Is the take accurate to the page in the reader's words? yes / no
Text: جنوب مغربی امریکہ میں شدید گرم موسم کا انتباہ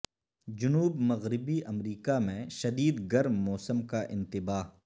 yes